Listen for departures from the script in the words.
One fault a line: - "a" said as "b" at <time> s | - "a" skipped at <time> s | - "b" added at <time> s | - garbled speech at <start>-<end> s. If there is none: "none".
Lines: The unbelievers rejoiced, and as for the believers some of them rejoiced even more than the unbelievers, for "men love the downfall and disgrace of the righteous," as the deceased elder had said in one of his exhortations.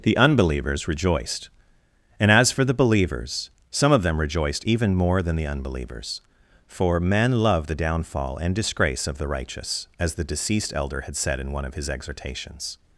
none